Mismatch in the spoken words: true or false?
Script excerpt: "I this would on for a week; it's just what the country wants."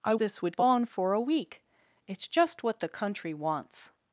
false